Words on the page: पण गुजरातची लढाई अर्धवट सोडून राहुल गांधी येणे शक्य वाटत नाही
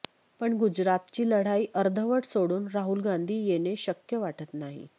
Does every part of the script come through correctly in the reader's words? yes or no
yes